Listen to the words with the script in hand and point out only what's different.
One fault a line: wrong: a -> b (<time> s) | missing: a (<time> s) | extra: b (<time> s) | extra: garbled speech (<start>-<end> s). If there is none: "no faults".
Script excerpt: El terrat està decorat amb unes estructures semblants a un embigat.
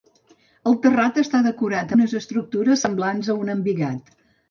missing: amb (1.9 s)